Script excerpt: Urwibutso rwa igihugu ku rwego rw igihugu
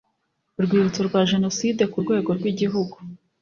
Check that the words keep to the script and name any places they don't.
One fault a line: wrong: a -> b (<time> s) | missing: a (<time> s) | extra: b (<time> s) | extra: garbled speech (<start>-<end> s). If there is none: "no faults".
wrong: igihugu -> jenoside (1.3 s)